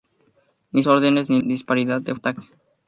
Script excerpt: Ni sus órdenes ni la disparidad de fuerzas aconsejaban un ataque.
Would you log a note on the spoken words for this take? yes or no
yes